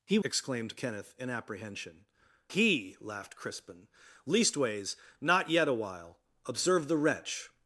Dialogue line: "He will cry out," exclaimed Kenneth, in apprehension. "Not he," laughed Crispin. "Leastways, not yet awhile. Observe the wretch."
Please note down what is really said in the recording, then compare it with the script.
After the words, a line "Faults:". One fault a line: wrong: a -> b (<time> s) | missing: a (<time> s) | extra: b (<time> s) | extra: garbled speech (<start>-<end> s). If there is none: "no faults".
"He," exclaimed Kenneth, in apprehension. "He," laughed Crispin. "Leastways, not yet awhile. Observe the wretch."
Faults:
missing: will cry out (0.2 s)
missing: Not (2.0 s)